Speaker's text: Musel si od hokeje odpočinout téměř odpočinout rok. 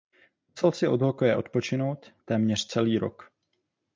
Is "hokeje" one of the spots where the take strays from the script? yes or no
no